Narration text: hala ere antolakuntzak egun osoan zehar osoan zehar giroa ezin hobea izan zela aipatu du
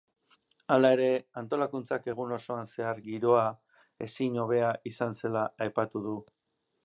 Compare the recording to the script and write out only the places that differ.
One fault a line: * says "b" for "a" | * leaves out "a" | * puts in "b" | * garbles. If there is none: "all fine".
* leaves out "osoan zehar"